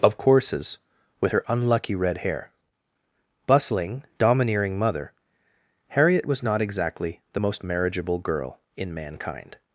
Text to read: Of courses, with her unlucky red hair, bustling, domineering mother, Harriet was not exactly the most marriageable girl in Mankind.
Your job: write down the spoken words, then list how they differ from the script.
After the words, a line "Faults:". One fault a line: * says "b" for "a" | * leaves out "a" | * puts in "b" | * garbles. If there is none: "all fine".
Of courses, with her unlucky red hair, bustling, domineering mother, Harriet was not exactly the most marriageable girl in Mankind.
Faults:
all fine